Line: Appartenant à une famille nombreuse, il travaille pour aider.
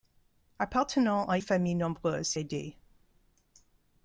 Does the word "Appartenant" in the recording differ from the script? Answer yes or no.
no